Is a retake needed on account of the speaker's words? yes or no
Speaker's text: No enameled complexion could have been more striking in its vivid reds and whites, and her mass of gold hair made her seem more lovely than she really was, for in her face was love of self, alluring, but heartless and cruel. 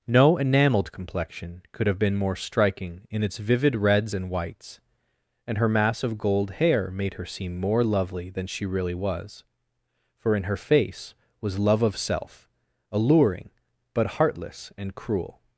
no